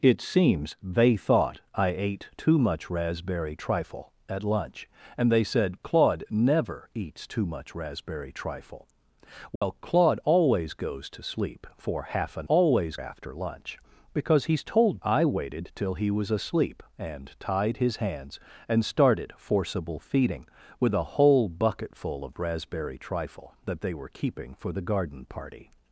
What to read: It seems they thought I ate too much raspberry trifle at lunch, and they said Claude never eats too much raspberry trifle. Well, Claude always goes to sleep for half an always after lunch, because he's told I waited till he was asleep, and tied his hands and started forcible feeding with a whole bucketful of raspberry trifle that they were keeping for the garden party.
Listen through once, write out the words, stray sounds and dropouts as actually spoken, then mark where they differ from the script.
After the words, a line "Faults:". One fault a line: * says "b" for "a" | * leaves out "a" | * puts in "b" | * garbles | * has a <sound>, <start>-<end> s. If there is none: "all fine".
It seems they thought I ate too much raspberry trifle at lunch, and they said Claude never eats too much raspberry trifle. Well, Claude always goes to sleep for half an always after lunch, because he's told I waited till he was asleep, and tied his hands and started forcible feeding with a whole bucketful of raspberry trifle that they were keeping for the garden party.
Faults:
* has a dropout, 9.6-9.6 s